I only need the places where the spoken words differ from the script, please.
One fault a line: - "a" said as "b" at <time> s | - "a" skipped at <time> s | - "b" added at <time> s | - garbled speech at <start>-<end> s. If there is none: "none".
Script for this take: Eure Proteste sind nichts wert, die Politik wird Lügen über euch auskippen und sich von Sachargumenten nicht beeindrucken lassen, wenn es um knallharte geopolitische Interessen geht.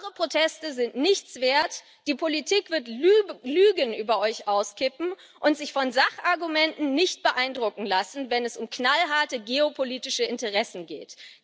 none